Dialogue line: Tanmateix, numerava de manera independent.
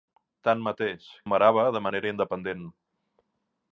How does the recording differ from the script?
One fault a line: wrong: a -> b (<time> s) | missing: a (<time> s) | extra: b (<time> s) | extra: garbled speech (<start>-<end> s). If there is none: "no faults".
no faults